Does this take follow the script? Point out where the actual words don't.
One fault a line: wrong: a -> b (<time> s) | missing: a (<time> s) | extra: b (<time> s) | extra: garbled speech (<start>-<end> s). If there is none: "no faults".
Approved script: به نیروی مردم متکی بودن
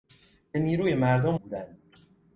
missing: متکی (1.4 s)